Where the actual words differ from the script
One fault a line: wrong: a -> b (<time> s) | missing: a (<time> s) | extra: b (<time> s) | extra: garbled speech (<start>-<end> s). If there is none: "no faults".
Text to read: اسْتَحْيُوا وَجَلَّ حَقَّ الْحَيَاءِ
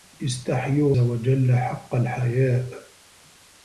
no faults